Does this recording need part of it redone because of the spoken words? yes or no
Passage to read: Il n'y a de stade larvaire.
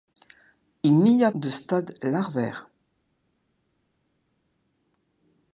no